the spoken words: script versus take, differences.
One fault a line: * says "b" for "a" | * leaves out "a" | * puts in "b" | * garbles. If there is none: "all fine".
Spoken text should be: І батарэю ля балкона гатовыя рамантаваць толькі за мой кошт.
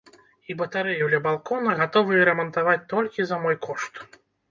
all fine